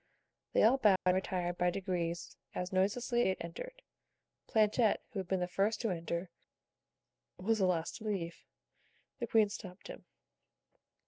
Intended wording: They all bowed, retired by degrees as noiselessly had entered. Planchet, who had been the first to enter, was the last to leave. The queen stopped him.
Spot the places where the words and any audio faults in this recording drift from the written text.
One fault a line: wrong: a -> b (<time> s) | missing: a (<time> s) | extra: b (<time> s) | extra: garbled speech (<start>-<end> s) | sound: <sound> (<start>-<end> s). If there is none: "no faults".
sound: dropout (1.0-1.1 s)